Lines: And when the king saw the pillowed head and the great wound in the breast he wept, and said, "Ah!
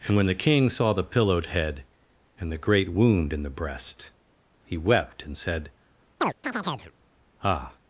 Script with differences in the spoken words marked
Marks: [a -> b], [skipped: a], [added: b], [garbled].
And when the king saw the pillowed head and the great wound in the breast he wept, and said, "Ah!